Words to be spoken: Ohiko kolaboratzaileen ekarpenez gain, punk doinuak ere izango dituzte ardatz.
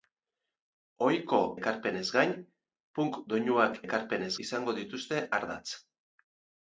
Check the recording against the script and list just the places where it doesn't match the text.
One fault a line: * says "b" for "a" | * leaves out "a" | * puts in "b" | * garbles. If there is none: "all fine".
* leaves out "kolaboratzaileen"
* says "ekarpenez" for "ere"